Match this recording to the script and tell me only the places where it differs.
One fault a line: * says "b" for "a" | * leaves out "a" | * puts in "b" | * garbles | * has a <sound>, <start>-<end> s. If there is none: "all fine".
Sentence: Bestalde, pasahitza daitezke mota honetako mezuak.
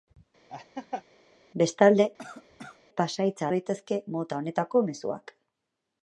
* has a laugh, 0.5-1.0 s
* has a cough, 2.2-2.8 s